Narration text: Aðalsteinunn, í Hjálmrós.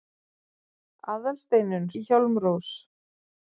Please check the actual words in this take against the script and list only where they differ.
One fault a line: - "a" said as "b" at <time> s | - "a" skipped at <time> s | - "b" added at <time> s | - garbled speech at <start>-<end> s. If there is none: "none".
none